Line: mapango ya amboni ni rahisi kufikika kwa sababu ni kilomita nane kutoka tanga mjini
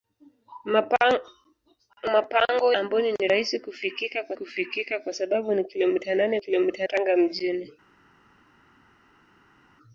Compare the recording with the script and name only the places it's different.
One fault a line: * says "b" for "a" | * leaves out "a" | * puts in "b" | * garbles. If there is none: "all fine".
* leaves out "ya"
* puts in "kufikika kwa"
* says "kilomita" for "kutoka"